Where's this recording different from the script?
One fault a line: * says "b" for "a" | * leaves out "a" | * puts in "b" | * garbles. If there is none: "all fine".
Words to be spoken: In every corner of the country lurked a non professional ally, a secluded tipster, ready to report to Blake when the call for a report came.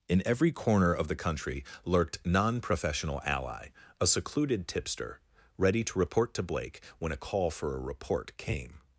* leaves out "a"
* says "a" for "the"